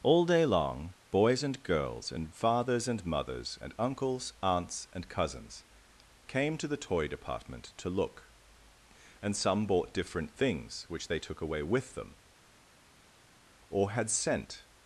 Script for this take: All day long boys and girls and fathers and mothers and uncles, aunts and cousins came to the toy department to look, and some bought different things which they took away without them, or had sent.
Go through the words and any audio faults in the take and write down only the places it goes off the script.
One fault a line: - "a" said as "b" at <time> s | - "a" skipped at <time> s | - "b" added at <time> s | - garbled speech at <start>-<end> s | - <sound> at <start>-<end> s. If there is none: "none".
- "without" said as "with" at 11.6 s